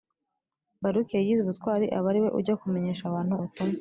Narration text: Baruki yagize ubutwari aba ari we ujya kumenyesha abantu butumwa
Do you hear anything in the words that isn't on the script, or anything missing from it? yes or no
no